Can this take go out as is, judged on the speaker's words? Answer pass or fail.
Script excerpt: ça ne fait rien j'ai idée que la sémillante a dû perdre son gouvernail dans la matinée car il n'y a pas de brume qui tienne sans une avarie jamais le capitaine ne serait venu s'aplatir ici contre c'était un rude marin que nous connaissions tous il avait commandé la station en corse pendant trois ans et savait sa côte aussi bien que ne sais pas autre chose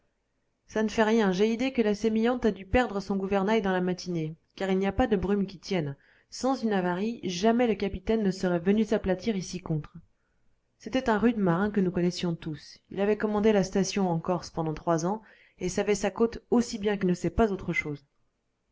pass